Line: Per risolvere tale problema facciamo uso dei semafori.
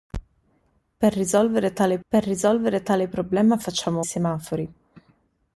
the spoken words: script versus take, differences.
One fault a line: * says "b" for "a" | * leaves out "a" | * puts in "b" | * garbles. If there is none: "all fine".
* puts in "per risolvere tale"
* leaves out "uso dei"